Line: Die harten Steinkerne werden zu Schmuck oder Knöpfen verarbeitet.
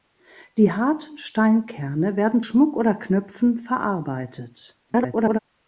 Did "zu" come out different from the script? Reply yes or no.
yes